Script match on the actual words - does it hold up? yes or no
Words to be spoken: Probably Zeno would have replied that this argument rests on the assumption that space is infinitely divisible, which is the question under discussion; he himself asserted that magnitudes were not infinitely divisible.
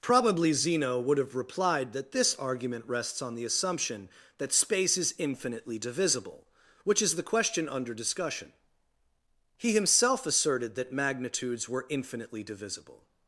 no